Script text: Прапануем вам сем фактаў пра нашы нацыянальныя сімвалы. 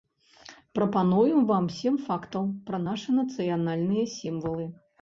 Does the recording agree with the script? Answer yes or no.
yes